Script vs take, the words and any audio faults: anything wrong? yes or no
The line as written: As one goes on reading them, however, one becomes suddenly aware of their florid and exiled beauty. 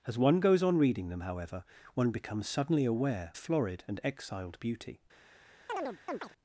yes